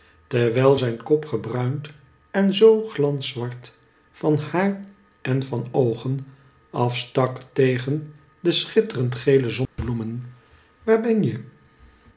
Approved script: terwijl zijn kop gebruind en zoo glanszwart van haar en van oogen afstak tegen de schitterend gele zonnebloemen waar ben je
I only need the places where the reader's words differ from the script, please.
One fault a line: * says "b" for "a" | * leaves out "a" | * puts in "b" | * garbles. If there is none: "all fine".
all fine